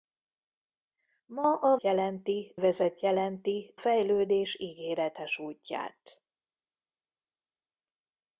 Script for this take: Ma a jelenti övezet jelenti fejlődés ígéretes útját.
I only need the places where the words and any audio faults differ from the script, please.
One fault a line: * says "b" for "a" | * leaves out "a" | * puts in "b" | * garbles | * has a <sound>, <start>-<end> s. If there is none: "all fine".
all fine